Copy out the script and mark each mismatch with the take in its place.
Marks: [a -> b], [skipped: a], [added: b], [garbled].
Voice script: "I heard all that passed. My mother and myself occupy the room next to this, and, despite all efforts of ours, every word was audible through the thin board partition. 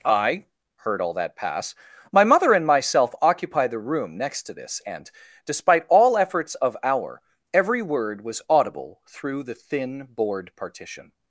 "I heard all that [passed. -> pass] My mother and myself occupy the room next to this, and, despite all efforts of [ours, -> our] every word was audible through the thin board partition.